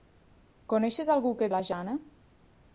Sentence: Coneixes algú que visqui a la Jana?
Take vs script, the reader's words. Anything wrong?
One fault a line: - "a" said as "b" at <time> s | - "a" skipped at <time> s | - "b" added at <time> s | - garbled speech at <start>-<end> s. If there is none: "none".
- "visqui" skipped at 1.5 s